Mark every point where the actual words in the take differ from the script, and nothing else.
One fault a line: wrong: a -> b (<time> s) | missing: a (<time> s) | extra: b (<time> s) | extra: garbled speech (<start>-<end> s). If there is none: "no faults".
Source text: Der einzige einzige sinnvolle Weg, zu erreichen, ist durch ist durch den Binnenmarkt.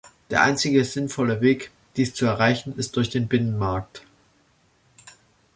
missing: einzige (0.8 s)
extra: dies (1.9 s)
missing: ist durch (3.1 s)